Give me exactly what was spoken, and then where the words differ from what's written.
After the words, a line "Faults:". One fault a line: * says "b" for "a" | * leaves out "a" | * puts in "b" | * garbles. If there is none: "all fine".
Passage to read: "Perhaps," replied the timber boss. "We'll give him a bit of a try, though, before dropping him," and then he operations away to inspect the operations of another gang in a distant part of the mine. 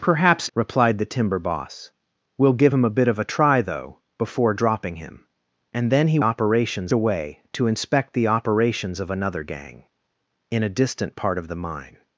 "Perhaps," replied the timber boss. "We'll give him a bit of a try, though, before dropping him," and then he operations away to inspect the operations of another gang in a distant part of the mine.
Faults:
all fine